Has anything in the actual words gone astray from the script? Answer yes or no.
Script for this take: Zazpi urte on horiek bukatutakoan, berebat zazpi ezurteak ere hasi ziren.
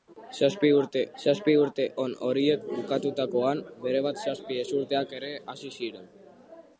yes